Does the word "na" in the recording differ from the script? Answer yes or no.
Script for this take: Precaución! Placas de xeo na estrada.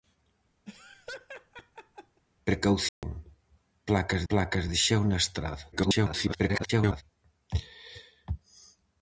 no